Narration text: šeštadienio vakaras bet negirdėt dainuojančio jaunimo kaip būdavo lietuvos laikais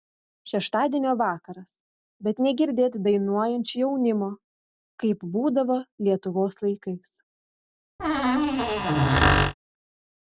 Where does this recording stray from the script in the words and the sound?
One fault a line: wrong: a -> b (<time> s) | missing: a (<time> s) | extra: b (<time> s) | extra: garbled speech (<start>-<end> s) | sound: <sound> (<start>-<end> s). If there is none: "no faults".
sound: squeak (8.0-9.5 s)